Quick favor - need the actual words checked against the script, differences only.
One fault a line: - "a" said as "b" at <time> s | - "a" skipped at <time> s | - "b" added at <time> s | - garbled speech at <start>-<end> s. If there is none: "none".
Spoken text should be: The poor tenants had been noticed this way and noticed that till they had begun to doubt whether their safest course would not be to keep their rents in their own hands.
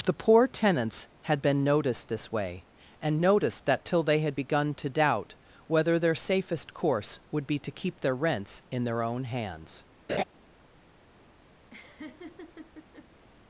- "not" skipped at 7.5 s